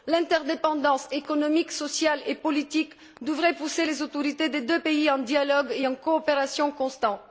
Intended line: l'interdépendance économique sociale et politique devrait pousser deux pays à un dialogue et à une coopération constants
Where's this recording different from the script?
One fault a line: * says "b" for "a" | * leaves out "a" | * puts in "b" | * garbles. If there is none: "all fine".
* puts in "les autorités des"